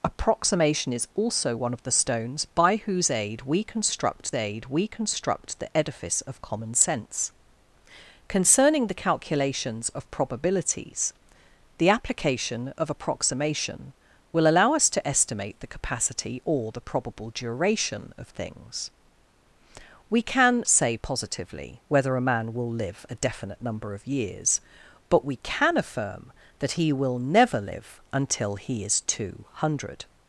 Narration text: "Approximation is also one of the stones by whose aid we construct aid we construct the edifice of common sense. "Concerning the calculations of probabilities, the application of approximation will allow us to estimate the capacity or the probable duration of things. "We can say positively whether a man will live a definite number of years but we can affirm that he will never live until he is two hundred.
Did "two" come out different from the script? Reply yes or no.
no